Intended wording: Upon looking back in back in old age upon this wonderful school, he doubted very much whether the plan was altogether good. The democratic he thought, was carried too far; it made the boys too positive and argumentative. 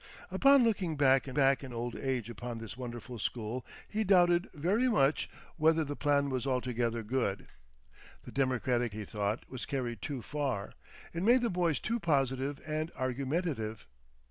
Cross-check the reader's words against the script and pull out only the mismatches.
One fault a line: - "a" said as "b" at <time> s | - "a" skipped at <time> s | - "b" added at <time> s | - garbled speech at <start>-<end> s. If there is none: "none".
none